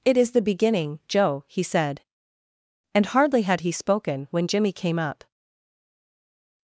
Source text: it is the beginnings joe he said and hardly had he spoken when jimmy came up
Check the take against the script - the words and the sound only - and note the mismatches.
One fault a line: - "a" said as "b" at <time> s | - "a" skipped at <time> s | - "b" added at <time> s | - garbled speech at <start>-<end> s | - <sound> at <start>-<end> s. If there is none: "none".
- "beginnings" said as "beginning" at 0.4 s